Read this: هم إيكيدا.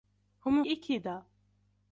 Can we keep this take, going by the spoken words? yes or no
yes